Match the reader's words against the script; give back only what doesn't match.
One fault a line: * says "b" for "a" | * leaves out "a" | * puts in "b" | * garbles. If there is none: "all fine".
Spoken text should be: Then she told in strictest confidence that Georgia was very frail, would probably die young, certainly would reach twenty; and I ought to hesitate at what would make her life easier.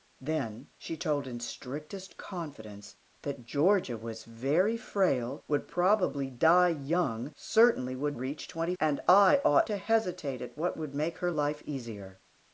all fine